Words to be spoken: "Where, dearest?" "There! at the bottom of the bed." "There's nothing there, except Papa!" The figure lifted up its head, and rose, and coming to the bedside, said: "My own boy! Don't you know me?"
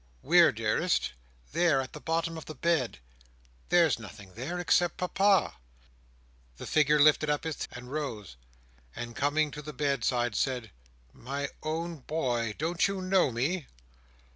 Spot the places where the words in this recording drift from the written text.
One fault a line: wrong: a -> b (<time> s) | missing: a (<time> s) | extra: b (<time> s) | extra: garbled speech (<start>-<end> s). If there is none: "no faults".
missing: head (7.7 s)